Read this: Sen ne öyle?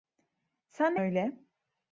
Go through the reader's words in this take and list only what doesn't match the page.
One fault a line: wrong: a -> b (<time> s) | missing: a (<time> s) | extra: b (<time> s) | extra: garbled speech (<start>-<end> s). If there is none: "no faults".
no faults